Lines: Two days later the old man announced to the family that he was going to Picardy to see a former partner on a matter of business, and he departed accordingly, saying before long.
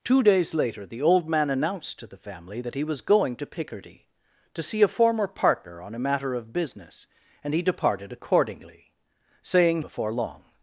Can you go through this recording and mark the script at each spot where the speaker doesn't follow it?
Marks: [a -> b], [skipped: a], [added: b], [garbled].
Two days later the old man announced to the family that he was going to Picardy to see a former partner on a matter of business, and he departed accordingly, saying before long.